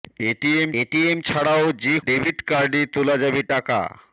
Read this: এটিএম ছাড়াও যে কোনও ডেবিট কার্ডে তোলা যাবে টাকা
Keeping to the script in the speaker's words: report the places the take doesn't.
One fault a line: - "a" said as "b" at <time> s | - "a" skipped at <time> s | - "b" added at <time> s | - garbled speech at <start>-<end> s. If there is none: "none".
- "এটিএম" added at 0.8 s
- "কোনও" skipped at 1.9 s